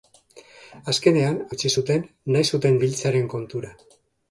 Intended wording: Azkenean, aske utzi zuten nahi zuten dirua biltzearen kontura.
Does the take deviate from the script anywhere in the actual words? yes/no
yes